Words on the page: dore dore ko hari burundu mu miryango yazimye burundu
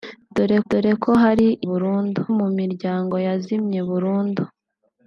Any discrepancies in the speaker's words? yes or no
no